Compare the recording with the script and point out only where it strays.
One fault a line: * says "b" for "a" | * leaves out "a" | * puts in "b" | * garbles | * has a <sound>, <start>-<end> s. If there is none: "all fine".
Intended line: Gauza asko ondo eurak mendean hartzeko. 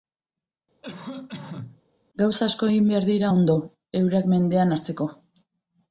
* has a cough, 0.8-1.8 s
* puts in "egin behar dira"